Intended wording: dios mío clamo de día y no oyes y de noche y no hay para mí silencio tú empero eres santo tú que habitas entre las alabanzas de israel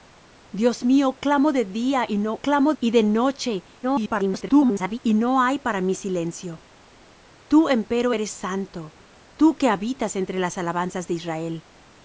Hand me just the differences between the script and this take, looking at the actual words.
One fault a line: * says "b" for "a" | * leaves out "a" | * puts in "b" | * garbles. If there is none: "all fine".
* says "clamo" for "oyes"
* garbles